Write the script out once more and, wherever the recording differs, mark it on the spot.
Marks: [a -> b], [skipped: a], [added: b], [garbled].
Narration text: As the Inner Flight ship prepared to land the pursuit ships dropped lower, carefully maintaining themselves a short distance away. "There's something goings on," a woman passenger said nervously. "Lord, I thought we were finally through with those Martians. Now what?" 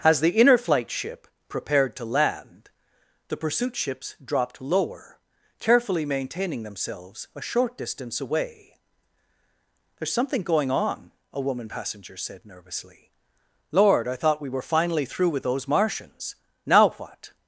As the Inner Flight ship prepared to land the pursuit ships dropped lower, carefully maintaining themselves a short distance away. "There's something [goings -> going] on," a woman passenger said nervously. "Lord, I thought we were finally through with those Martians. Now what?"